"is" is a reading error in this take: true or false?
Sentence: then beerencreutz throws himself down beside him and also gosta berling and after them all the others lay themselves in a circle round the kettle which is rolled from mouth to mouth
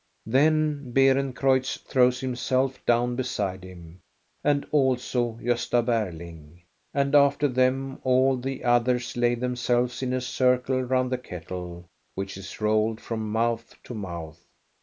false